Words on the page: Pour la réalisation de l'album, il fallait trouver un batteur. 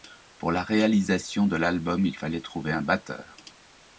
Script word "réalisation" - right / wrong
right